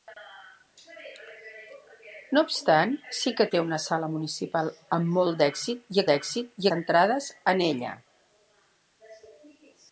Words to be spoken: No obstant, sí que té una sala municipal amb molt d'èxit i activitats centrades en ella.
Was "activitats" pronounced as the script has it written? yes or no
no